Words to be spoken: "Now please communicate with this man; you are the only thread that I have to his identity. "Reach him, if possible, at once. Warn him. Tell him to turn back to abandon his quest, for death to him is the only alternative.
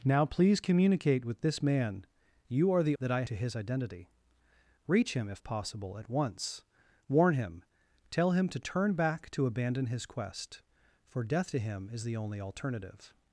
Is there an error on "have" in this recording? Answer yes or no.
yes